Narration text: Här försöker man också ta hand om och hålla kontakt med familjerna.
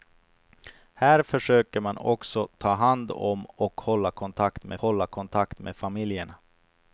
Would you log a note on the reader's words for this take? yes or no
yes